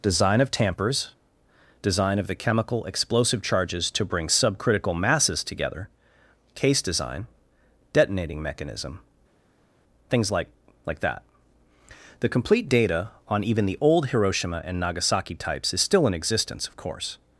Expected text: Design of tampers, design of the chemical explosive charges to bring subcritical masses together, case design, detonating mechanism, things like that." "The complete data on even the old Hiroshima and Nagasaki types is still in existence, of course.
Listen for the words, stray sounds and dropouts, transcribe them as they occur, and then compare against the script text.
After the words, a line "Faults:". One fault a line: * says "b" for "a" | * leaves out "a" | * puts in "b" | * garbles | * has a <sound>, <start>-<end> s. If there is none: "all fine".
Design of tampers, design of the chemical explosive charges to bring subcritical masses together, case design, detonating mechanism, things like like that." "The complete data on even the old Hiroshima and Nagasaki types is still in existence, of course.
Faults:
* puts in "like"